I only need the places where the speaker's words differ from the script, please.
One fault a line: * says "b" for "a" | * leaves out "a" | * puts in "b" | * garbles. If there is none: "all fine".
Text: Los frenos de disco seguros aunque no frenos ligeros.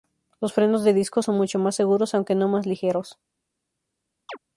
* puts in "son mucho más"
* says "más" for "frenos"